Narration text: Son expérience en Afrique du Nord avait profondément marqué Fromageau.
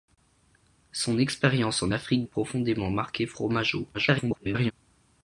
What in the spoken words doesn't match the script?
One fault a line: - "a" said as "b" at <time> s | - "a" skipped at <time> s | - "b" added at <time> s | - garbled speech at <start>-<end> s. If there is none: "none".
- "du Nord avait" skipped at 2.2 s
- garbled speech at 3.9-4.7 s